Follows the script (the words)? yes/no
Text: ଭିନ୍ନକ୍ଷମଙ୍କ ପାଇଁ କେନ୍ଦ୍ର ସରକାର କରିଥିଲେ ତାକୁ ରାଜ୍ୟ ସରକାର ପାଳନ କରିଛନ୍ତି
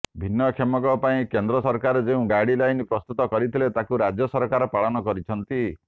no